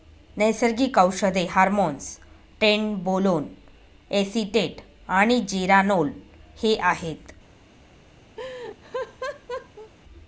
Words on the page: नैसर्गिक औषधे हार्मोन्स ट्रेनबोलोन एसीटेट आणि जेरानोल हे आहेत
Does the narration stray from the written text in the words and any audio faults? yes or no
yes